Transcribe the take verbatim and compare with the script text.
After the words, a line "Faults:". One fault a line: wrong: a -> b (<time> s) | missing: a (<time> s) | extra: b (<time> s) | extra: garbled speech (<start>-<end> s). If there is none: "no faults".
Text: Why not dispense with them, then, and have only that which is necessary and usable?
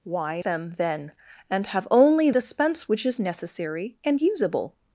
Why them, then, and have only dispense which is necessary and usable?
Faults:
missing: not dispense with (0.4 s)
wrong: that -> dispense (2.3 s)